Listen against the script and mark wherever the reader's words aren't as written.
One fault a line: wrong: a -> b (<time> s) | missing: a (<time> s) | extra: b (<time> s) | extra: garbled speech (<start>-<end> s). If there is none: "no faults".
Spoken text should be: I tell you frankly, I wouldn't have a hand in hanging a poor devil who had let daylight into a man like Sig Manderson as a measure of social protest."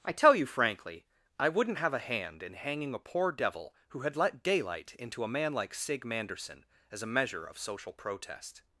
no faults